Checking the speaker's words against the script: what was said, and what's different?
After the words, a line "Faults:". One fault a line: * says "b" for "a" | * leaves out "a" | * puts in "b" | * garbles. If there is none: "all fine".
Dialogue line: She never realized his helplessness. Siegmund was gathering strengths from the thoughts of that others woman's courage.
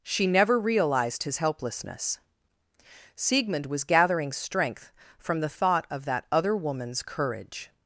She never realized his helplessness. Siegmund was gathering strength from the thought of that other woman's courage.
Faults:
* says "strength" for "strengths"
* says "thought" for "thoughts"
* says "other" for "others"